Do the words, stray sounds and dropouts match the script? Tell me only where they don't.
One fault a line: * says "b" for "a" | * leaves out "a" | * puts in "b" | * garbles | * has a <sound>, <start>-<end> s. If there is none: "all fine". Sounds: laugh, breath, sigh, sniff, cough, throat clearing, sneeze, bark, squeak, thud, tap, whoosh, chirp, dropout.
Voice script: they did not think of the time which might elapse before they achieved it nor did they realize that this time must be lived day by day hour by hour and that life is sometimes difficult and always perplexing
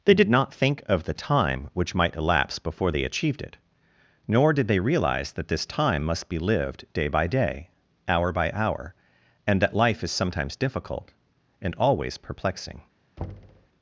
* has a thud, 13.2-13.7 s